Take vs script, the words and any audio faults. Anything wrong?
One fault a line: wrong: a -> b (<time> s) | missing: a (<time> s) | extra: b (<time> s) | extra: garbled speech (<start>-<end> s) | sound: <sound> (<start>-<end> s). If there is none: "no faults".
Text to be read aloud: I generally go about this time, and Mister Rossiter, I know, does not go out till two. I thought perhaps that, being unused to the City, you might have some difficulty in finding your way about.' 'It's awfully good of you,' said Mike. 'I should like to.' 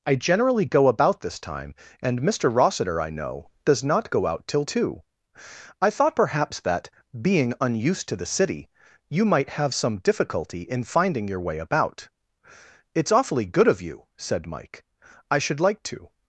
no faults